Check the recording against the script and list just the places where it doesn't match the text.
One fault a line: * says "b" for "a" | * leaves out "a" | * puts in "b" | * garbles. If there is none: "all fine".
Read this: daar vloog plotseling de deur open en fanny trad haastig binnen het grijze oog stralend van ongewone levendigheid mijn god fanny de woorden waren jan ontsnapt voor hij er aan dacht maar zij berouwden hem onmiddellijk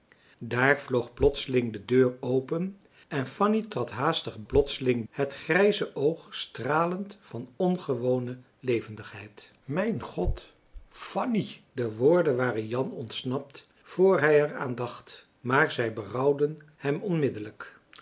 * says "plotseling" for "binnen"